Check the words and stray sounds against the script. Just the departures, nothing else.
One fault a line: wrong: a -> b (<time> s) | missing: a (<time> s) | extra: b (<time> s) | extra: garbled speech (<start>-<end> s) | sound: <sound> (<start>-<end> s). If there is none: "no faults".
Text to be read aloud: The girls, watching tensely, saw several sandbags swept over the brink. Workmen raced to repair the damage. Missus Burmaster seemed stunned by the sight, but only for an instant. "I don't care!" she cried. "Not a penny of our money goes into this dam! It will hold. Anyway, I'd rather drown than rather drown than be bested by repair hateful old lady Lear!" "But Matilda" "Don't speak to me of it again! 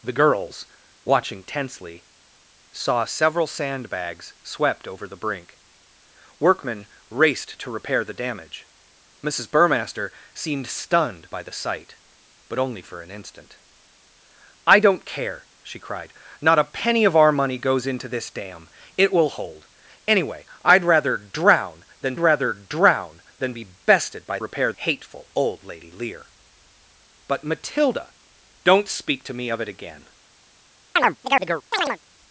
sound: chirp (31.0-32.0 s)